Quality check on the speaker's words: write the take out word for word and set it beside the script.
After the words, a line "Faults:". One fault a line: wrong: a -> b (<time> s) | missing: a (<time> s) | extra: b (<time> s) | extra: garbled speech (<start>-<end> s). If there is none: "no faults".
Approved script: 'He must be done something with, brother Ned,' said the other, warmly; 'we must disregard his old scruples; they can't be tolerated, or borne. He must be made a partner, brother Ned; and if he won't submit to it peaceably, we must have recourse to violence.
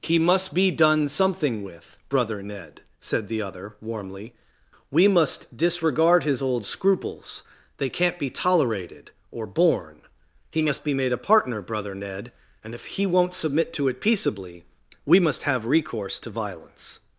'He must be done something with, brother Ned,' said the other, warmly; 'we must disregard his old scruples; they can't be tolerated, or borne. He must be made a partner, brother Ned; and if he won't submit to it peaceably, we must have recourse to violence.
Faults:
no faults